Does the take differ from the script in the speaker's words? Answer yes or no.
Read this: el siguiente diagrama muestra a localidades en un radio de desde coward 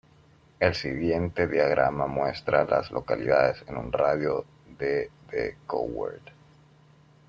yes